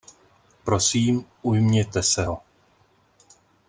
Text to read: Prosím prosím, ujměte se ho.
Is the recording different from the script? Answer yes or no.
yes